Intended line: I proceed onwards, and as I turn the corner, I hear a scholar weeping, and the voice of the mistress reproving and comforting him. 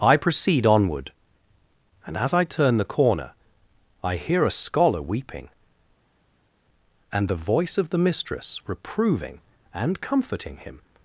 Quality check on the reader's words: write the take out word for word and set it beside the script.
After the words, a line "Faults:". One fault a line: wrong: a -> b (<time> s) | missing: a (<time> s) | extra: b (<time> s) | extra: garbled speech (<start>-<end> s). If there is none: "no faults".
I proceed onward, and as I turn the corner, I hear a scholar weeping, and the voice of the mistress reproving and comforting him.
Faults:
wrong: onwards -> onward (0.7 s)